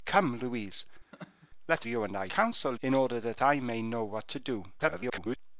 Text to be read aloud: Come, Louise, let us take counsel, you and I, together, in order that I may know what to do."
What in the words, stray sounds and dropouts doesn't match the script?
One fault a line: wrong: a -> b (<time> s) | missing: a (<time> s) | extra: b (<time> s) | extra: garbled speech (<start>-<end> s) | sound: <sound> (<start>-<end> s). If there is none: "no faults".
sound: laugh (1.1-1.5 s)
missing: us take counsel (1.9 s)
wrong: together -> counsel (2.3 s)
extra: garbled speech (4.8-5.4 s)